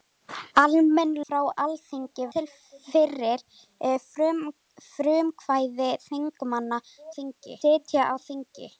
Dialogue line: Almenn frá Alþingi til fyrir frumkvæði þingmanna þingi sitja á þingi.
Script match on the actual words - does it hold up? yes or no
yes